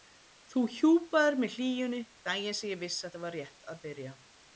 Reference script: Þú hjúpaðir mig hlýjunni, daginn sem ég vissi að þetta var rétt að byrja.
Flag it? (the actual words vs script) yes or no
yes